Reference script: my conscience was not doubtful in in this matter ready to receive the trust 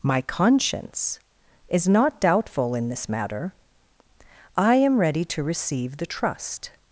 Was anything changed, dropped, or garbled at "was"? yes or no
yes